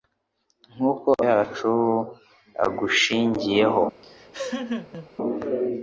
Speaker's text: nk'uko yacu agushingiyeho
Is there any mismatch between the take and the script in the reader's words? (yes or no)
no